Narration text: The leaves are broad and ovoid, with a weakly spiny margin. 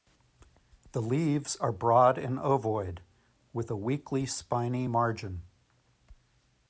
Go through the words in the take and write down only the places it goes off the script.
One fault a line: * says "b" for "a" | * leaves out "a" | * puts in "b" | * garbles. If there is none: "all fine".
all fine